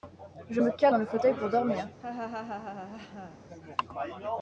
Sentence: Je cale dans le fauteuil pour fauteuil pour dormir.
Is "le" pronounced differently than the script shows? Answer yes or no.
no